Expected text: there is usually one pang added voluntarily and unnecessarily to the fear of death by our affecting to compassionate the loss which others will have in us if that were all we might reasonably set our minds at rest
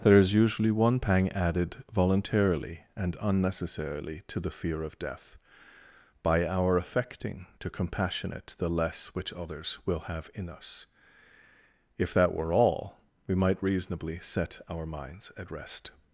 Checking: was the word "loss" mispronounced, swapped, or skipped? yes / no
yes